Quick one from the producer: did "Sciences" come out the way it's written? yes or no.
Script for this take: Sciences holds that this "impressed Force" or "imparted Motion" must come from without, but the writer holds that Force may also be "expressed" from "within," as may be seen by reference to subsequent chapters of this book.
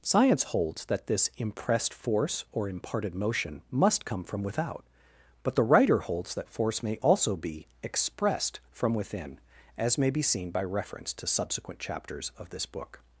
no